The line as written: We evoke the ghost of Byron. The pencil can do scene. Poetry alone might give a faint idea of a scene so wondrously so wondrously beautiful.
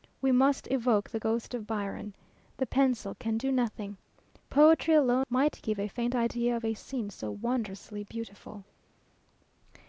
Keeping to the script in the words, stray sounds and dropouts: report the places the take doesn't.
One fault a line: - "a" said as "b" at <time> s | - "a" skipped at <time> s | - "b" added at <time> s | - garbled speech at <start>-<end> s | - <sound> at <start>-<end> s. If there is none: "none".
- "must" added at 0.3 s
- "scene" said as "nothing" at 3.5 s
- "so wondrously" skipped at 8.0 s